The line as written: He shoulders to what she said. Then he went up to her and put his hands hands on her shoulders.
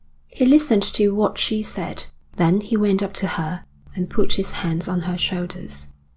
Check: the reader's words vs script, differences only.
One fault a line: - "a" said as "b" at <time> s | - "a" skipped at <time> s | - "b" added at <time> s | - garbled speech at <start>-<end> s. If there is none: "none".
- "shoulders" said as "listened" at 0.5 s
- "hands" skipped at 4.9 s